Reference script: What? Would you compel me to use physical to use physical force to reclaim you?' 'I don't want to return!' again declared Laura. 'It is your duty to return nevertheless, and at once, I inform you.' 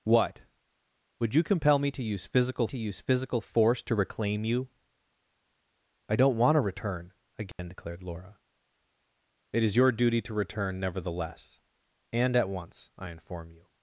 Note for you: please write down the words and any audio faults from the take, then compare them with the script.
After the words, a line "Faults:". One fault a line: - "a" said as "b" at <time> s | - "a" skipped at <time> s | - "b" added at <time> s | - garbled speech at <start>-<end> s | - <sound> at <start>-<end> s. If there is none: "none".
What? Would you compel me to use physical to use physical force to reclaim you?' 'I don't want to return!' again declared Laura. 'It is your duty to return nevertheless, and at once, I inform you.'
Faults:
- dropout at 7.5-7.6 s